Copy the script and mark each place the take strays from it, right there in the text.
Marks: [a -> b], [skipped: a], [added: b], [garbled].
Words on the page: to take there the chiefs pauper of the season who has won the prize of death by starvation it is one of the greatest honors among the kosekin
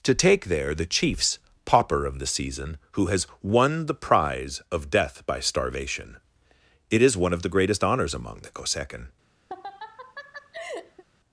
to take there the chiefs pauper of the season who has won the prize of death by starvation it is one of the greatest honors among the kosekin